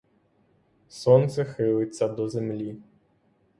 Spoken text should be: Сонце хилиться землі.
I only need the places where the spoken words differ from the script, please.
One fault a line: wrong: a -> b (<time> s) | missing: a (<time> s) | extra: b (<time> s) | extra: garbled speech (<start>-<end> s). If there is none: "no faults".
extra: до (2.1 s)